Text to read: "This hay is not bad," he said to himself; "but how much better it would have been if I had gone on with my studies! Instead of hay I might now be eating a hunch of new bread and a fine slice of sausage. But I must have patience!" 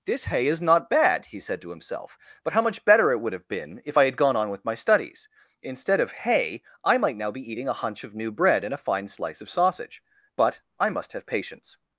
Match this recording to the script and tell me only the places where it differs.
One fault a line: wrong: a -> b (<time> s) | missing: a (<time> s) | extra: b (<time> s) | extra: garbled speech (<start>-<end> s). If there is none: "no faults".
no faults